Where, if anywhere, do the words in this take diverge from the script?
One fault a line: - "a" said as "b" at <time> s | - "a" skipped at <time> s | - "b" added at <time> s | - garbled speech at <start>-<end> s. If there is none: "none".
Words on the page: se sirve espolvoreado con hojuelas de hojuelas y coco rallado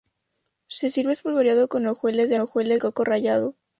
none